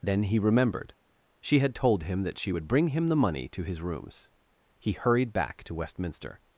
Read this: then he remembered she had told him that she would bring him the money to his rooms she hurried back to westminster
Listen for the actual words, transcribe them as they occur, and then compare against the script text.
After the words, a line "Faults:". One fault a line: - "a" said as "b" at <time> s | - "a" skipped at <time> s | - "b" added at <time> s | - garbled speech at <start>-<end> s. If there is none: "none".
then he remembered she had told him that she would bring him the money to his rooms he hurried back to westminster
Faults:
- "she" said as "he" at 4.8 s